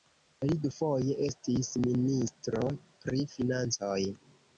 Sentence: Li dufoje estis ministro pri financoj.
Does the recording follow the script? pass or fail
pass